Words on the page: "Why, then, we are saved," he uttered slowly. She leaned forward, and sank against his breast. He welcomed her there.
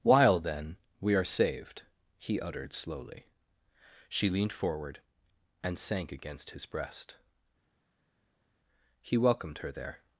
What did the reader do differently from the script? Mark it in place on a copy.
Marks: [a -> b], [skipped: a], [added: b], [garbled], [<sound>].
["Why, -> While] then, we are saved," he uttered slowly. She leaned forward, and sank against his breast. He welcomed her there.